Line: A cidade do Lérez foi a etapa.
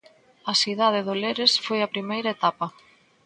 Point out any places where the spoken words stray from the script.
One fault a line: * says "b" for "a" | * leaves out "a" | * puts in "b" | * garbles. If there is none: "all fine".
* puts in "primeira"